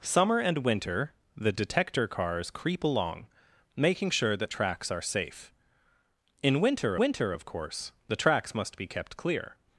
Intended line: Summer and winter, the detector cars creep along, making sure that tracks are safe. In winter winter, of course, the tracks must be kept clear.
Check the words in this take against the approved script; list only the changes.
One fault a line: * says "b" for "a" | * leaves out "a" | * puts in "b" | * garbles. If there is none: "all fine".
all fine